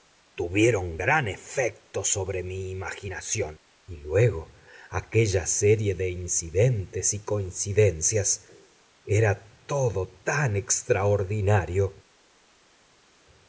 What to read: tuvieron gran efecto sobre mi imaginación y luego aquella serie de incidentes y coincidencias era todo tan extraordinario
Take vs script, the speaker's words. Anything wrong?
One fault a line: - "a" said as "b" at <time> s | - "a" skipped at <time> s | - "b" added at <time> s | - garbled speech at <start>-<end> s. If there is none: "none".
none